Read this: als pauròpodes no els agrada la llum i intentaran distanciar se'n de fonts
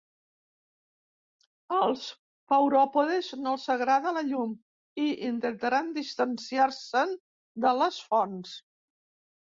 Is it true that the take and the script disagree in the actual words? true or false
true